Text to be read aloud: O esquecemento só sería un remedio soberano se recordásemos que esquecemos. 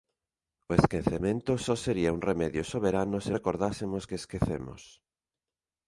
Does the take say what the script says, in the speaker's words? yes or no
yes